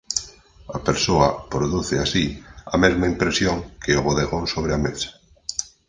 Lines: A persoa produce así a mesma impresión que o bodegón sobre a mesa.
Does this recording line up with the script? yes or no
yes